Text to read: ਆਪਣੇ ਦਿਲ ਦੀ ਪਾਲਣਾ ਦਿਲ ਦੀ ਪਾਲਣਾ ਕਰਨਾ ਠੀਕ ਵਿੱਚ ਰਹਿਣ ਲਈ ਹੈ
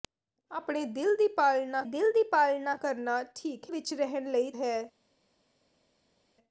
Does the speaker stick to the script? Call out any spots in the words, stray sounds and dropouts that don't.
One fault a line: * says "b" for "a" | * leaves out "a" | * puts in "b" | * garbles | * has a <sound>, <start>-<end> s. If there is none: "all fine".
all fine